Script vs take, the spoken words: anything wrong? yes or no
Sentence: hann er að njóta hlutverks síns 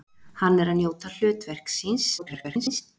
yes